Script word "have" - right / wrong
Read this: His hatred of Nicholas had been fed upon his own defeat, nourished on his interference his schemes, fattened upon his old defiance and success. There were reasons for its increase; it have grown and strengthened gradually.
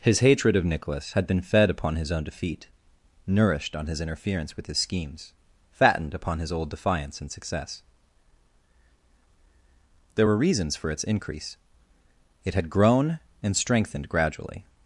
wrong